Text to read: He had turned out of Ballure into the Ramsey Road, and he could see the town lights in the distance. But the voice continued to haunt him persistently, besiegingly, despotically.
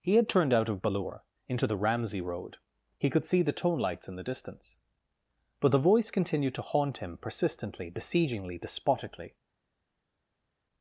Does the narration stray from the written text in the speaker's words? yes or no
yes